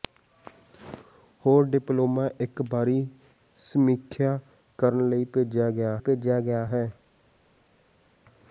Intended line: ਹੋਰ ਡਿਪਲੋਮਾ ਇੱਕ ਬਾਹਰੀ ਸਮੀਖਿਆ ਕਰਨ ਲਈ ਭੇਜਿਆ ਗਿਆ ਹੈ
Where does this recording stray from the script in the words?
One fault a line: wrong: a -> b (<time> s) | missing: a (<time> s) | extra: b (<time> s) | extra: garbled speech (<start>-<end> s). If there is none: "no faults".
extra: ਭੇਜਿਆ ਗਿਆ (6.0 s)